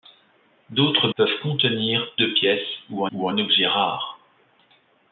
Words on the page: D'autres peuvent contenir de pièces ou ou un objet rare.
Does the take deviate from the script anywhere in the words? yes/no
no